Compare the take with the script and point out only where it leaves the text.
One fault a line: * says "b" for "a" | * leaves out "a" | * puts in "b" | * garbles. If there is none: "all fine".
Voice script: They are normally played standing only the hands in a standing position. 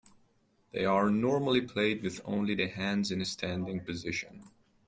* says "with" for "standing"